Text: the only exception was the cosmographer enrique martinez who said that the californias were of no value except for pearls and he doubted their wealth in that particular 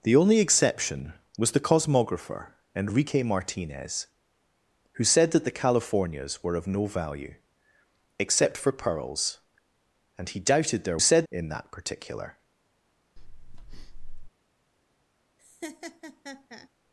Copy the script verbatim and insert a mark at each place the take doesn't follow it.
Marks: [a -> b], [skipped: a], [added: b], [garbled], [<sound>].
the only exception was the cosmographer enrique martinez who said that the californias were of no value except for pearls and he doubted their [wealth -> said] in that particular [breath] [laugh]